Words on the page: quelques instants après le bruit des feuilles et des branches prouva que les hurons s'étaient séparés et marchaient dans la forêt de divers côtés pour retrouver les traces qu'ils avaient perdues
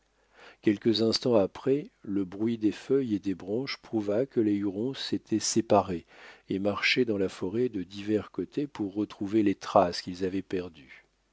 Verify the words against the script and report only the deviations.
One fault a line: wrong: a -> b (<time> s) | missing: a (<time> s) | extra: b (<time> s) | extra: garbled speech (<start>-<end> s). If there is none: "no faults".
no faults